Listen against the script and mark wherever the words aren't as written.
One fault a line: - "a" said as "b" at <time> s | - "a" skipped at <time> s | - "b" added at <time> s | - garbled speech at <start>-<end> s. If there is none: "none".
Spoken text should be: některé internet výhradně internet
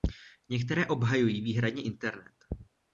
- "internet" said as "obhajují" at 0.9 s